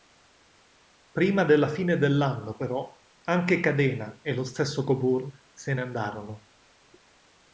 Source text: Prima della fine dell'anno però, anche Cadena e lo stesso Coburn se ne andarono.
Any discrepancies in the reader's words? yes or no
no